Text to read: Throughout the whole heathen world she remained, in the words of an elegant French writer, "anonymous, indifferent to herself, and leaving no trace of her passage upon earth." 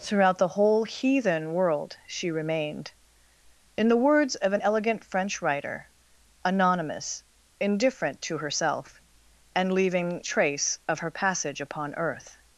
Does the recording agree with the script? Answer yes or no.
no